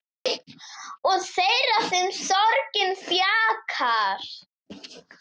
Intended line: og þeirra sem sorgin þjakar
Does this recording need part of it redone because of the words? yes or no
no